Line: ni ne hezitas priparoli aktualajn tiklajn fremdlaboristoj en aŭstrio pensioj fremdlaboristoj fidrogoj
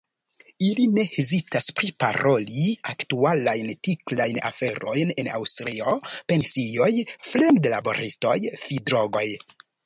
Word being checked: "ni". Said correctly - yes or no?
no